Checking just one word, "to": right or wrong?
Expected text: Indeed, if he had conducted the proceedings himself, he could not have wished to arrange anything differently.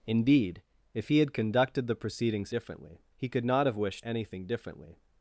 wrong